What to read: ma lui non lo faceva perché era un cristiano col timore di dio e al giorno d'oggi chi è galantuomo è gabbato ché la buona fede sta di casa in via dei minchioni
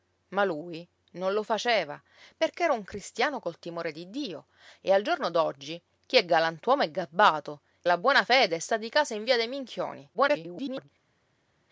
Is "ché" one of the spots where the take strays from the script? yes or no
yes